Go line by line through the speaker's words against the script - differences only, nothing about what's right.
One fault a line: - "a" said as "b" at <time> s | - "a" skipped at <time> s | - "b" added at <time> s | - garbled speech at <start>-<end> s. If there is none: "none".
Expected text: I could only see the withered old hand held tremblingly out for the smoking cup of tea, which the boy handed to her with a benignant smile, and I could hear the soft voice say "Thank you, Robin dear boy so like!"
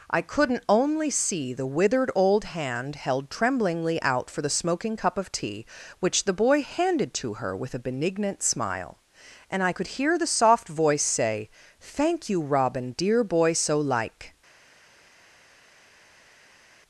- "could" said as "couldn't" at 0.2 s